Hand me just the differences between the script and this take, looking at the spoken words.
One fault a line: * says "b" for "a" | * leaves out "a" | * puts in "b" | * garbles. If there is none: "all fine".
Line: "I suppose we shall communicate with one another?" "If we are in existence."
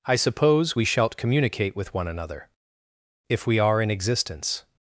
* says "shalt" for "shall"